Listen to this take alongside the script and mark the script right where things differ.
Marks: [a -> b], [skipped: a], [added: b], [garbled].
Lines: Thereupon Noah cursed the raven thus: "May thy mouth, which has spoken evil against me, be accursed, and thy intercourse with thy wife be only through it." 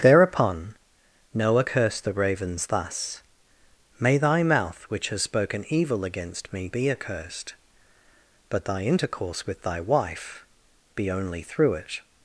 Thereupon Noah cursed the [raven -> ravens] thus: "May thy mouth, which has spoken evil against me, be accursed, [and -> but] thy intercourse with thy wife be only through it."